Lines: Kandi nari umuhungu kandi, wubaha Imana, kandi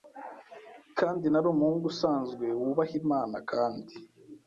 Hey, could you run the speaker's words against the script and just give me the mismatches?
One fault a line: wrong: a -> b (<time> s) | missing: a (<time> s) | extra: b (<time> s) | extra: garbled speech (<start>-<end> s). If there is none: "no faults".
wrong: kandi -> usanzwe (1.9 s)